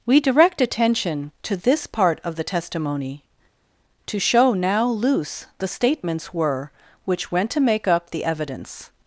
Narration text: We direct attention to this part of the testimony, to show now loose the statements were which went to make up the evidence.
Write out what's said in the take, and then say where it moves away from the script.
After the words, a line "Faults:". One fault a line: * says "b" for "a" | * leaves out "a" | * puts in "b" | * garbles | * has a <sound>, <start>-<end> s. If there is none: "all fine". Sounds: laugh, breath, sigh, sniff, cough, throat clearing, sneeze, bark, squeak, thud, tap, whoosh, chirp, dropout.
We direct attention to this part of the testimony, to show now loose the statements were which went to make up the evidence.
Faults:
all fine